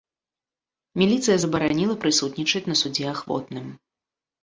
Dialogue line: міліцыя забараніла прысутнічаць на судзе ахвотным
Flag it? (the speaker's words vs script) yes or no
no